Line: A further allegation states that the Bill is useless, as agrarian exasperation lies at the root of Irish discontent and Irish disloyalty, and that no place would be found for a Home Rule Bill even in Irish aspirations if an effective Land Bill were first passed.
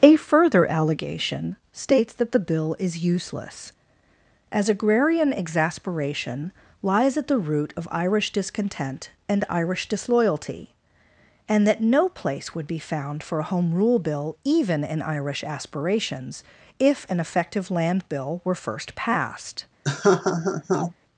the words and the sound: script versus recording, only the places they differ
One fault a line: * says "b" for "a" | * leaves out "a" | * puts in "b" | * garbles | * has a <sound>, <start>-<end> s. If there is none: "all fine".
* has a laugh, 19.8-20.9 s